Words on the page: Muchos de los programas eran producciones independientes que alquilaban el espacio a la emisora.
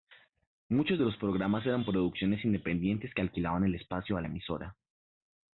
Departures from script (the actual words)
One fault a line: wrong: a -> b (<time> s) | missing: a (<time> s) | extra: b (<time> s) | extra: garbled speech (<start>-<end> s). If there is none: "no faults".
no faults